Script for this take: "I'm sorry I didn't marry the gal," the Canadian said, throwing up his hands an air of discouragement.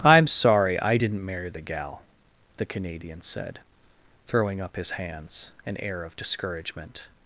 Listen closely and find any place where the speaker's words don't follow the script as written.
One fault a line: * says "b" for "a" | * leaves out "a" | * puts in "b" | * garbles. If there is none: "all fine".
all fine